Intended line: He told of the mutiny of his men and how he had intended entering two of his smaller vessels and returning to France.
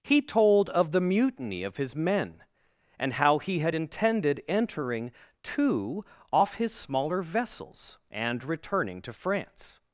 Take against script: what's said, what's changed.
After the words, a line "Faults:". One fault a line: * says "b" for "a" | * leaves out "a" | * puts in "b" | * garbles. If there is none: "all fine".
He told of the mutiny of his men and how he had intended entering two off his smaller vessels and returning to France.
Faults:
* says "off" for "of"